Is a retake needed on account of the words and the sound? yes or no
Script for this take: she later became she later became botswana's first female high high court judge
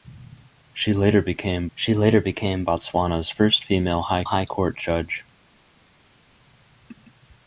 no